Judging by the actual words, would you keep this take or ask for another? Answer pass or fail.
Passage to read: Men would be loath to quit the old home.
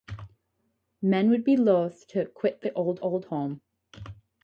fail